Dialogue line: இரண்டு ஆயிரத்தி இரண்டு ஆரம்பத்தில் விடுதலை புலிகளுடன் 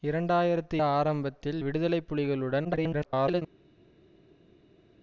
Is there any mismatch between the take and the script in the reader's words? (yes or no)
yes